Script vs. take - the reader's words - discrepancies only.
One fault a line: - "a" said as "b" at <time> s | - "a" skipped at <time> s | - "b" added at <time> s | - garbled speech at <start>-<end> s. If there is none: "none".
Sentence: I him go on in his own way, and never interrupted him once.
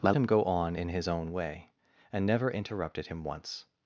none